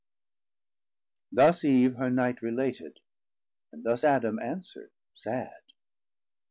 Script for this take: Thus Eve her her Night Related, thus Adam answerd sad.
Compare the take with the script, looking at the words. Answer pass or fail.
fail